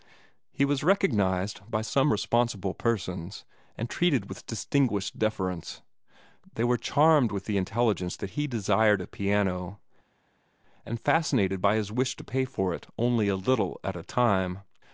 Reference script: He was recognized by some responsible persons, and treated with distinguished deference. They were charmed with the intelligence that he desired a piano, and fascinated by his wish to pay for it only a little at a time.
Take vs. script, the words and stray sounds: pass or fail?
pass